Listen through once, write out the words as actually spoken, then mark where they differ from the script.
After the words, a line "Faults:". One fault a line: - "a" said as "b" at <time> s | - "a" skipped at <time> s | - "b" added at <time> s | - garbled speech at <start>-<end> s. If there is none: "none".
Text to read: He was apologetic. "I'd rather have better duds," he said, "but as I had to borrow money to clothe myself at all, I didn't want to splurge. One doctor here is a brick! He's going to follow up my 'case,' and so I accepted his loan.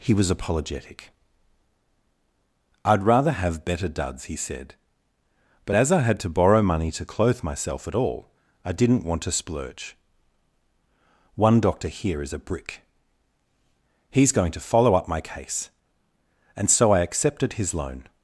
He was apologetic. "I'd rather have better duds," he said, "but as I had to borrow money to clothe myself at all, I didn't want to splurge. One doctor here is a brick! He's going to follow up my 'case,' and so I accepted his loan.
Faults:
none